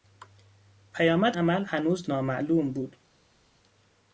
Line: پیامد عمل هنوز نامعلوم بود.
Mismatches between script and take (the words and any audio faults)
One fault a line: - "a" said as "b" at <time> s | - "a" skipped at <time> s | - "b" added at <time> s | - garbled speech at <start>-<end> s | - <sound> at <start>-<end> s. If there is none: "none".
none